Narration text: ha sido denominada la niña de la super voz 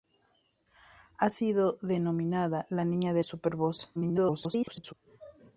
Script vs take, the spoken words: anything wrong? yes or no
yes